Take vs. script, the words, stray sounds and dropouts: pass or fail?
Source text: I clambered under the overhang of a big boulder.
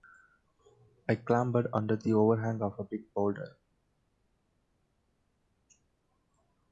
pass